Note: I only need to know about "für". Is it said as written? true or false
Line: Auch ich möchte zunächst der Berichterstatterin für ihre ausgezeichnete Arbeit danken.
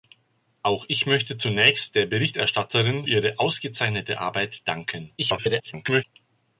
false